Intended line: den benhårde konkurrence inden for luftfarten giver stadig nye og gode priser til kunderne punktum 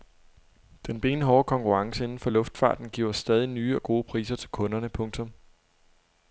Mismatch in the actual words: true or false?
false